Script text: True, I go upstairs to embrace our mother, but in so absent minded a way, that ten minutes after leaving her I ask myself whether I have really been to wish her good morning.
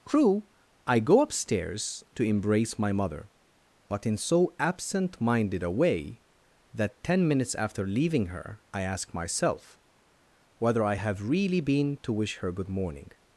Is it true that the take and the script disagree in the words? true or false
true